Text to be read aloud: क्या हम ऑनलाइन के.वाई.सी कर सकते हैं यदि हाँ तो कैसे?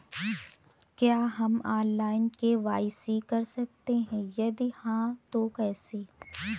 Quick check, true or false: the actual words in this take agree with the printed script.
true